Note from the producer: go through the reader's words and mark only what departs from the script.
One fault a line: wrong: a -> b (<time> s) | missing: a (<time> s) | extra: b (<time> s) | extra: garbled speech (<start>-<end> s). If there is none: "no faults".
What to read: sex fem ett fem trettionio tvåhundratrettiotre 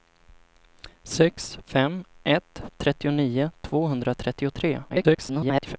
missing: fem (2.6 s)
extra: garbled speech (4.9-5.8 s)